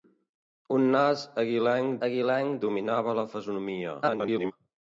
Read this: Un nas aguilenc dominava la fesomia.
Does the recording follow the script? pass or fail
fail